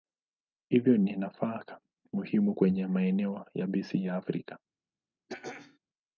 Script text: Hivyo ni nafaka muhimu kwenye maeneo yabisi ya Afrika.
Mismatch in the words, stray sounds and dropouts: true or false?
true